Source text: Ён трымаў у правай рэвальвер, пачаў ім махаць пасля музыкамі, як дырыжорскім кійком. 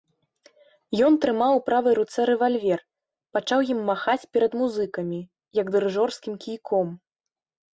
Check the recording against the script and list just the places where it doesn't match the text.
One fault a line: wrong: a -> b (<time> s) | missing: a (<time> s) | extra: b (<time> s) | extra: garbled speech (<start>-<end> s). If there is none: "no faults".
extra: руцэ (2.0 s)
wrong: пасля -> перад (4.4 s)